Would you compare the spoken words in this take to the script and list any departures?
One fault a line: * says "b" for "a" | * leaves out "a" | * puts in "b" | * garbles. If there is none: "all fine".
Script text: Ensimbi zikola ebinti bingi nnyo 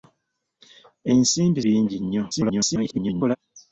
* leaves out "zikola ebinti"
* garbles